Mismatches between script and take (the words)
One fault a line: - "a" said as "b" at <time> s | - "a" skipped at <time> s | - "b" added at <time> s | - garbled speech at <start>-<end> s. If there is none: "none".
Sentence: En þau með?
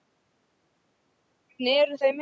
- "eru" added at 1.8 s